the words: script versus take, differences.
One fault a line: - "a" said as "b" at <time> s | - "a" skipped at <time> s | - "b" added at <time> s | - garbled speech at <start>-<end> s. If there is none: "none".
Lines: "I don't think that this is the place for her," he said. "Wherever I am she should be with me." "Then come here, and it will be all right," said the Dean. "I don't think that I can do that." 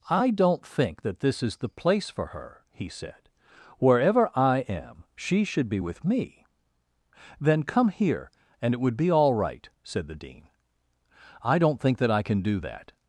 - "will" said as "would" at 8.8 s